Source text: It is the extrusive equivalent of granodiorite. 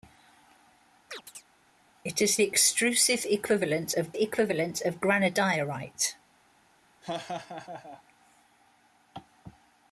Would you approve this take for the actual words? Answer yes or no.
no